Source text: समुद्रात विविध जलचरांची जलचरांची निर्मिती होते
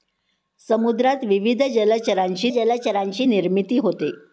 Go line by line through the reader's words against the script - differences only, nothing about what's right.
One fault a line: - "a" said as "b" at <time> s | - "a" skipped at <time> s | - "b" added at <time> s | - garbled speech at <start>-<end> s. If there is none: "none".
none